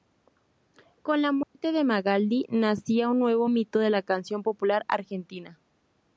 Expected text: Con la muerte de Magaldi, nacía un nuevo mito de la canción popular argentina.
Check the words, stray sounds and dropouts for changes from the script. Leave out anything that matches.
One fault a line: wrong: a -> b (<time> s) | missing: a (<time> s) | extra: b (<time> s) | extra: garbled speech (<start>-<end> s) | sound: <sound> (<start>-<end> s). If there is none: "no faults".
sound: dropout (1.4-1.6 s)